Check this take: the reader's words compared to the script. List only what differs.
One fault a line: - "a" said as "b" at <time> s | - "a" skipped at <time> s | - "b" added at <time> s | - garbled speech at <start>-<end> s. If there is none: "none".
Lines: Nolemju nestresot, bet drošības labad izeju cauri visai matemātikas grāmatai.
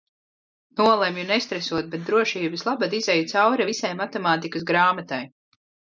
none